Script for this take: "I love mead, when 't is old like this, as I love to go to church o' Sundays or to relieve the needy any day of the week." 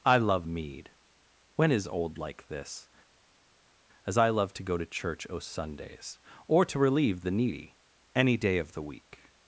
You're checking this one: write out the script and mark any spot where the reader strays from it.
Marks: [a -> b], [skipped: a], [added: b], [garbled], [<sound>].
"I love mead, when [skipped: 't] is old like this, as I love to go to church o' Sundays or to relieve the needy any day of the week."